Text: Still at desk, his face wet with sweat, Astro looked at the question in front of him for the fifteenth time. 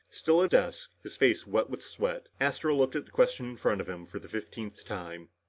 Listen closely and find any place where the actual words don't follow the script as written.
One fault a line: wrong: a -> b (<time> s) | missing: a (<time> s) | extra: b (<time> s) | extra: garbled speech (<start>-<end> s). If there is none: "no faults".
no faults